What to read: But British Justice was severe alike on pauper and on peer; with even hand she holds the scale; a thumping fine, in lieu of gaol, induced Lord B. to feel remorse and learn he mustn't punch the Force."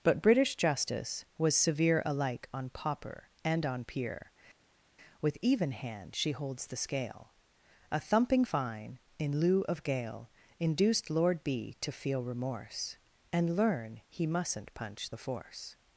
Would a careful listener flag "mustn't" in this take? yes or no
no